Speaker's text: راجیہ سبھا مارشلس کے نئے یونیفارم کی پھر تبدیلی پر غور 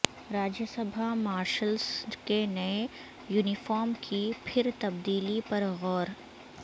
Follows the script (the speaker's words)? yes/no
yes